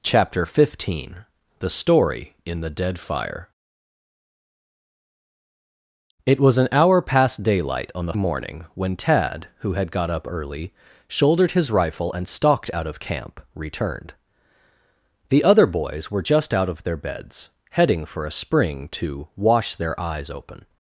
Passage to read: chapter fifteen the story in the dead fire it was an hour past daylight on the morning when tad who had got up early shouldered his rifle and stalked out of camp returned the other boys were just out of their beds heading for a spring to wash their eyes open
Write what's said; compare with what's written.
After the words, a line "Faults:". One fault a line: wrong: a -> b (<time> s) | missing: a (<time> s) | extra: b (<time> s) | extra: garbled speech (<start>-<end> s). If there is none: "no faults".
chapter fifteen the story in the dead fire it was an hour past daylight on the morning when tad who had got up early shouldered his rifle and stalked out of camp returned the other boys were just out of their beds heading for a spring to wash their eyes open
Faults:
no faults